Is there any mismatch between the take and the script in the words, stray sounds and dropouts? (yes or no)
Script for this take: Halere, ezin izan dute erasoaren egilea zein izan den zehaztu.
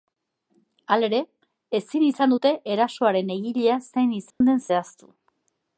yes